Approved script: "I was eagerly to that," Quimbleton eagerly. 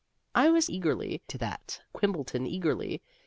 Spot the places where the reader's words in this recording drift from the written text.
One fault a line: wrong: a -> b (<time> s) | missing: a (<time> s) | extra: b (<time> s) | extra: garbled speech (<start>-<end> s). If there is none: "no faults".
no faults